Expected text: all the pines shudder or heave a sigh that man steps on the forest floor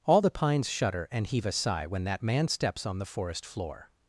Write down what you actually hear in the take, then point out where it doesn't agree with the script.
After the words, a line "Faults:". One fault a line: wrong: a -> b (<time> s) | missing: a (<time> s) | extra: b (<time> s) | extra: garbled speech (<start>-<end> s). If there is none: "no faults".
all the pines shudder and heave a sigh when that man steps on the forest floor
Faults:
wrong: or -> and (1.1 s)
extra: when (1.9 s)